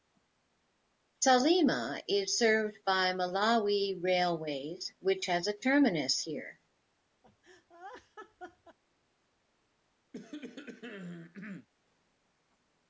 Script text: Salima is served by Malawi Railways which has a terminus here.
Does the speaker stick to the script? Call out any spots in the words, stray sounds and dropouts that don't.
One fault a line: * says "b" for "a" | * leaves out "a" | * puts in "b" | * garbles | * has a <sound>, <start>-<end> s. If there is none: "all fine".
* has a laugh, 7.2-8.8 s
* has a cough, 10.1-11.7 s